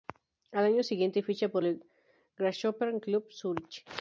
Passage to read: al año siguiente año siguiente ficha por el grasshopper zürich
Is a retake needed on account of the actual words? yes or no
yes